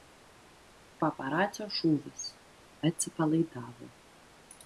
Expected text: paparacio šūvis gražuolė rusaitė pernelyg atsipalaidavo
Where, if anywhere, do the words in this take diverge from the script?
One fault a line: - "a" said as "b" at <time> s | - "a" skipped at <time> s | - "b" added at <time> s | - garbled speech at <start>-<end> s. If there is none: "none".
- "gražuolė rusaitė pernelyg" skipped at 2.2 s